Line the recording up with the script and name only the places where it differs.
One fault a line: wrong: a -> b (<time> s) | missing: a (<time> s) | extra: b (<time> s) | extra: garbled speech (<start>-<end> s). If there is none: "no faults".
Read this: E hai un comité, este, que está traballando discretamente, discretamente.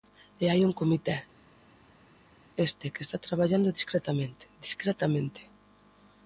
no faults